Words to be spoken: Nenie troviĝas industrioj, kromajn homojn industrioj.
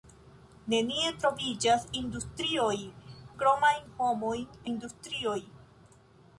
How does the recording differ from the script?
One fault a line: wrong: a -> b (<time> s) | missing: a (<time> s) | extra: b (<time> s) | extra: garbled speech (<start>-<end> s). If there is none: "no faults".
no faults